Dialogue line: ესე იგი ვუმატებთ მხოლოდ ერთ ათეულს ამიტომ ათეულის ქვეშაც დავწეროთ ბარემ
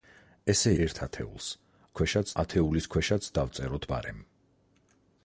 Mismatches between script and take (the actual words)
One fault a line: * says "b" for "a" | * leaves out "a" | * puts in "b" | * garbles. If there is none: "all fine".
* leaves out "იგი ვუმატებთ მხოლოდ"
* says "ქვეშაც" for "ამიტომ"